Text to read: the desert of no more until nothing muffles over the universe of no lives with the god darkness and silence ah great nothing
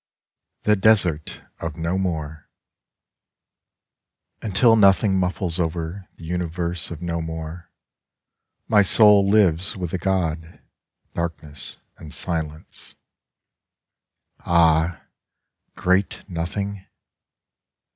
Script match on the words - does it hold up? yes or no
no